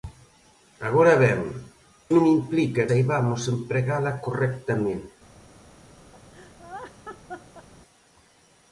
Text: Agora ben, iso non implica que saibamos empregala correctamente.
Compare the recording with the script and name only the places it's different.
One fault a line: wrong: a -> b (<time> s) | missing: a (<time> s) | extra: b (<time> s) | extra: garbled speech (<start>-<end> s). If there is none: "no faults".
missing: iso (1.4 s)
missing: que (2.8 s)